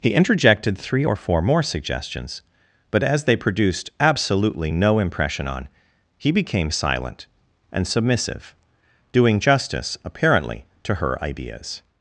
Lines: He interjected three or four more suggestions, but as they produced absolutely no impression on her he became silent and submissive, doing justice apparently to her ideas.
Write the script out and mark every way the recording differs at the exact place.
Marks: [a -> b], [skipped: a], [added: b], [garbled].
He interjected three or four more suggestions, but as they produced absolutely no impression on [skipped: her] he became silent and submissive, doing justice apparently to her ideas.